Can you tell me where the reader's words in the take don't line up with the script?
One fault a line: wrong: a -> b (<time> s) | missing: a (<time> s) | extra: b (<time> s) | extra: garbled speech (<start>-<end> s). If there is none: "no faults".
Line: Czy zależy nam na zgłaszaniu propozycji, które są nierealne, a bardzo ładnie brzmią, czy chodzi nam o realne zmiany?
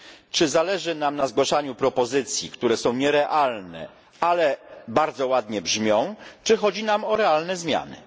wrong: a -> ale (4.2 s)